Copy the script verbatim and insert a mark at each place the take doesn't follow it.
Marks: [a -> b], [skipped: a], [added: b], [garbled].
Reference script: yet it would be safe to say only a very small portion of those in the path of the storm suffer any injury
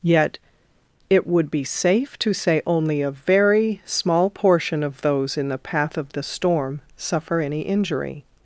yet it would be safe to say only a very small portion of those in the path of the storm suffer any injury